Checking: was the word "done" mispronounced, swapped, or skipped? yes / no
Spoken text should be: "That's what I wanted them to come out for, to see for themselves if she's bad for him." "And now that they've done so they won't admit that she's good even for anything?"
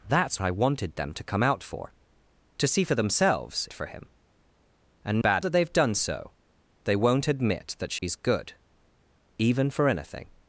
no